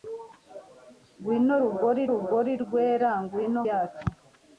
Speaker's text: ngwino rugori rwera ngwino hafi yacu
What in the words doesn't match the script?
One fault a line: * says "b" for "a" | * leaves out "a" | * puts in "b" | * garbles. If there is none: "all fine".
* puts in "rugori"
* leaves out "hafi"